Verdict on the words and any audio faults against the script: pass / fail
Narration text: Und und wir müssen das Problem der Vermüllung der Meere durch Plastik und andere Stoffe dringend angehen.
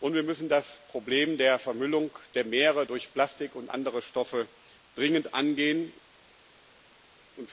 fail